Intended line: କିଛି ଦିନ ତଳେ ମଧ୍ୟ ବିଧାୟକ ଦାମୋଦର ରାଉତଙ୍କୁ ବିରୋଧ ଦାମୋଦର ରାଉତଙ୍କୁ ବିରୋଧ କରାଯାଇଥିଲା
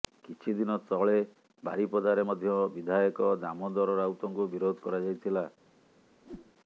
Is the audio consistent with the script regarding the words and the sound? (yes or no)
no